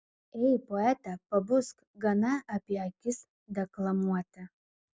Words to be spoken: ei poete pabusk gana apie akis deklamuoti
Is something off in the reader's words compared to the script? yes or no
no